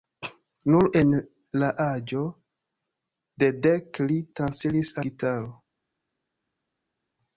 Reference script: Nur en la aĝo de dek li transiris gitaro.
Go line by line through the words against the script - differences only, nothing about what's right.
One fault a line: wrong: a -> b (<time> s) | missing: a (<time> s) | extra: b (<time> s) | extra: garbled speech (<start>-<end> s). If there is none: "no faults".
no faults